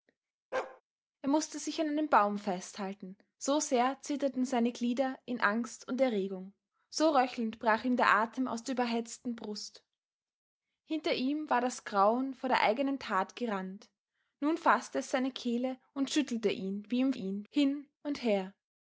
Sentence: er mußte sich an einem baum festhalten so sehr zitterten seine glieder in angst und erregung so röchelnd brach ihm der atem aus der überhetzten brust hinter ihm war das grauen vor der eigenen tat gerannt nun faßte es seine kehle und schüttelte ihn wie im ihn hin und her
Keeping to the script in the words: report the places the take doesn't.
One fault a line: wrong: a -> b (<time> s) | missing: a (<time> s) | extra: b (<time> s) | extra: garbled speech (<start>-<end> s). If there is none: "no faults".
no faults